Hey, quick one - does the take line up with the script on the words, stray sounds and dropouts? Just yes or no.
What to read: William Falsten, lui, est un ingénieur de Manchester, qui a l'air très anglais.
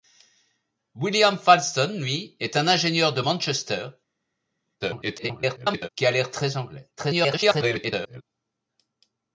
no